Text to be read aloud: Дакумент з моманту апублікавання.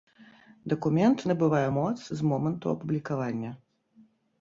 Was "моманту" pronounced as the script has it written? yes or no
yes